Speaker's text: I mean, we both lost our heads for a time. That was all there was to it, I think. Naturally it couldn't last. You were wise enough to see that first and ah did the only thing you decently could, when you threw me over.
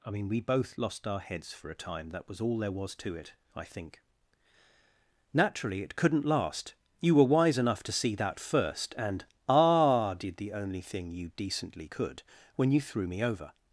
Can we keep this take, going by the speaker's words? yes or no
yes